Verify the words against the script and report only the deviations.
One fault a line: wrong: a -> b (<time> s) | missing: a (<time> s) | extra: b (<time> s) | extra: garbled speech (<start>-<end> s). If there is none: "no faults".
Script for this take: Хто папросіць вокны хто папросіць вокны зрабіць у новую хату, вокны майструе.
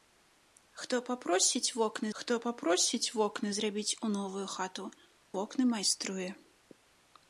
no faults